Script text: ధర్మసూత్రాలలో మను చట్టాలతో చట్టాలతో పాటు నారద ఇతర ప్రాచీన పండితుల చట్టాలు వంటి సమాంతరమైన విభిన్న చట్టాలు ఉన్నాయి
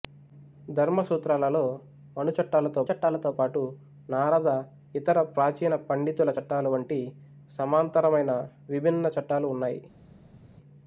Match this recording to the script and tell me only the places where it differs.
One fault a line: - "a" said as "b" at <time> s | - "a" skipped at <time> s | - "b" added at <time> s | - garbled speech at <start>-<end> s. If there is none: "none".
none